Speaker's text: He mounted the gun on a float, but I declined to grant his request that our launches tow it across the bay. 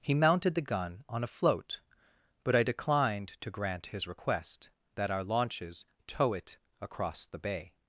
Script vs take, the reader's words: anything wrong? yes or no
no